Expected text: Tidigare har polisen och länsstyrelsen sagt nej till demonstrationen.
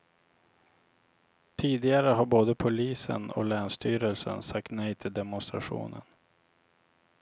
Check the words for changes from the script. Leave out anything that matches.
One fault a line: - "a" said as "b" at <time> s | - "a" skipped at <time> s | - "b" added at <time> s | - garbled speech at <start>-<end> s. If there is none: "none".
- "både" added at 2.2 s